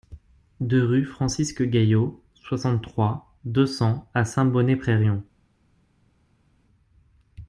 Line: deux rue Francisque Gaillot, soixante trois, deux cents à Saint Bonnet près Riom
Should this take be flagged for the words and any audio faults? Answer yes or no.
no